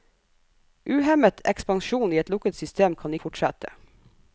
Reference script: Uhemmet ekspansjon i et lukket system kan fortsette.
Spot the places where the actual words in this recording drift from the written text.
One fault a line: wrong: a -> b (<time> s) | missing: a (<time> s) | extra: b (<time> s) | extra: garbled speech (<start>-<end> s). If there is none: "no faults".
no faults